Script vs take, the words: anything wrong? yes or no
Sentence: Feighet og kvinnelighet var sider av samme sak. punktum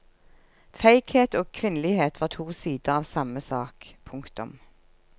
yes